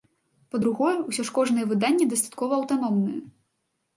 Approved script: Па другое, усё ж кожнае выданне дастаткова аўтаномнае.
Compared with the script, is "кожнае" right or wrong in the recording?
right